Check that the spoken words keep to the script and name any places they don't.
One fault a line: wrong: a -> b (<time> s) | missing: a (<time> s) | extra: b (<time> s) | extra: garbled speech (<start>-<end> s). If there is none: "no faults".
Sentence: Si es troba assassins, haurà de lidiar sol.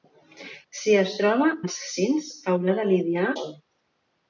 no faults